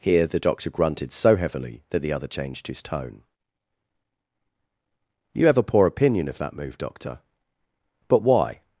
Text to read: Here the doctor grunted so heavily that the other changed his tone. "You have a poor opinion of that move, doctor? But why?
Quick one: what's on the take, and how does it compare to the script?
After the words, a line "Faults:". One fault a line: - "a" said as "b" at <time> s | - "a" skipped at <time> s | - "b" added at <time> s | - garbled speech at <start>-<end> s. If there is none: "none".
Here the doctor grunted so heavily that the other changed his tone. "You have a poor opinion of that move, doctor? But why?
Faults:
none